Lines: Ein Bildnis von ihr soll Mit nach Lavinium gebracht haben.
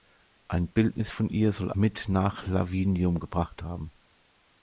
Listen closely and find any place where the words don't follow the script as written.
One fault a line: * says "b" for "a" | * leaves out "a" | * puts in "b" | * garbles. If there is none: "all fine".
all fine